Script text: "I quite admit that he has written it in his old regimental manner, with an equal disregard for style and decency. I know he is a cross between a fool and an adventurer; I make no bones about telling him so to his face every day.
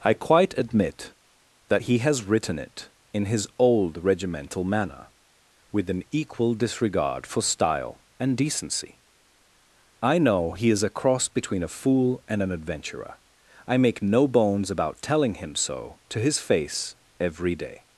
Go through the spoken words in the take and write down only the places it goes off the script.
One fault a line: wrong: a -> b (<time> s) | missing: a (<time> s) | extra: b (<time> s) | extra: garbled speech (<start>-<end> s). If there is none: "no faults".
no faults